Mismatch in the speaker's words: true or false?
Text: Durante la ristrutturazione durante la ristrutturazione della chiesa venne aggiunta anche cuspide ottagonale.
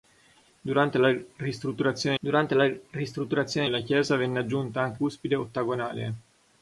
false